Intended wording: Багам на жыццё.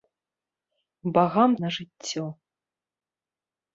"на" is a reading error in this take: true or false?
false